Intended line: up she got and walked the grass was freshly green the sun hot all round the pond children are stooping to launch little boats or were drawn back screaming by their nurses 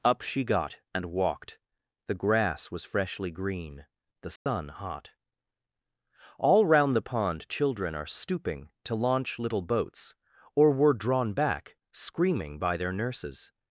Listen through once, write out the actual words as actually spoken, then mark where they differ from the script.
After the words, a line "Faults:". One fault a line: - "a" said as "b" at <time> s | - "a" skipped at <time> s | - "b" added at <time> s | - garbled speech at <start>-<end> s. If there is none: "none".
up she got and walked the grass was freshly green the sun hot all round the pond children are stooping to launch little boats or were drawn back screaming by their nurses
Faults:
none